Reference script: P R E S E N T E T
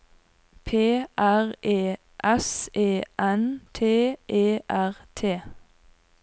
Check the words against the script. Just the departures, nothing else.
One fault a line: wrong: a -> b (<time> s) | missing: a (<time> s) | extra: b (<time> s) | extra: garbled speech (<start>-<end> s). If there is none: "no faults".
extra: R (4.7 s)